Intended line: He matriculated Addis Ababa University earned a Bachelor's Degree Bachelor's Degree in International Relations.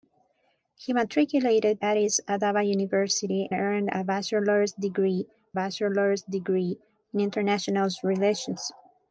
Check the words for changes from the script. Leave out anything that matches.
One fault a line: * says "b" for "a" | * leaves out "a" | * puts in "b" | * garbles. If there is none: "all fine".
all fine